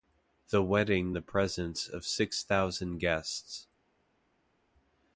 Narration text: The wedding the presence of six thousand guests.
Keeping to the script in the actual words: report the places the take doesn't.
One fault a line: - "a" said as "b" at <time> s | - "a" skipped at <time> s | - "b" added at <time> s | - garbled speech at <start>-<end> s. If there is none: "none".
none